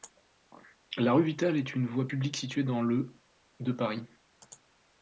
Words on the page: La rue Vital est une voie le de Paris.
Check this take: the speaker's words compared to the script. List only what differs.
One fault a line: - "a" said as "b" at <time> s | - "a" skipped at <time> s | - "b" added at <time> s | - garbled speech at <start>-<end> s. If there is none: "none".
- "publique située dans" added at 2.1 s